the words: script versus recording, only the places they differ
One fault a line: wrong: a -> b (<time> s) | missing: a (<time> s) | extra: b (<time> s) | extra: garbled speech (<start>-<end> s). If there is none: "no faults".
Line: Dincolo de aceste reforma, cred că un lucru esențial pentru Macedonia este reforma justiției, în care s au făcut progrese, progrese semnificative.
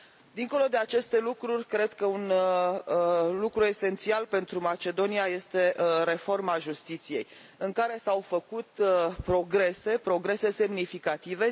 wrong: reforma -> lucruri (1.2 s)